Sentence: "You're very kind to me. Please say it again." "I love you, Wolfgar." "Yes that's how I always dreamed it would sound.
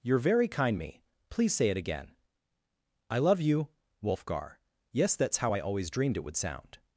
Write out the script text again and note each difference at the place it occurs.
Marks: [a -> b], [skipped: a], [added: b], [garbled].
"You're very kind [skipped: to] me. Please say it again." "I love you, Wolfgar." "Yes that's how I always dreamed it would sound.